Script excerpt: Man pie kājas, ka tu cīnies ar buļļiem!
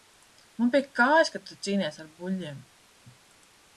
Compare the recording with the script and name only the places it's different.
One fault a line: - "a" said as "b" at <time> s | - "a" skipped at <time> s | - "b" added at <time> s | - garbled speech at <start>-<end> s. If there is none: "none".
none